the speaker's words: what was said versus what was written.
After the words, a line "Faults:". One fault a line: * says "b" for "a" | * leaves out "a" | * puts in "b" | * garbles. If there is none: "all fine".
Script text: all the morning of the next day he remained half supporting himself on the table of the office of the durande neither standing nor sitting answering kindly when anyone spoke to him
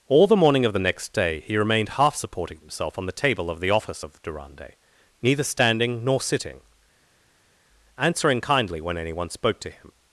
all the morning of the next day he remained half supporting himself on the table of the office of durande neither standing nor sitting answering kindly when anyone spoke to him
Faults:
* leaves out "the"